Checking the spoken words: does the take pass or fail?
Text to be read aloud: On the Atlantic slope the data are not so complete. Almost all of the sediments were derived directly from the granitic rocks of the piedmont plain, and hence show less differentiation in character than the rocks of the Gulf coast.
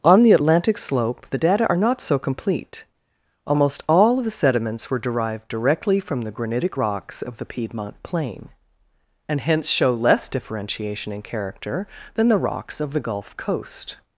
pass